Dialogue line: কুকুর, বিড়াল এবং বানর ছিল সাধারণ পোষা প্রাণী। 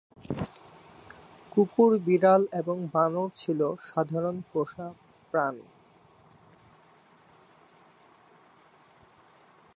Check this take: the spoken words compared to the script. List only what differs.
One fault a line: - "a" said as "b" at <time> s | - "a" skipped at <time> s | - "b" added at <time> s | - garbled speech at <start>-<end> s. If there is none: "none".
none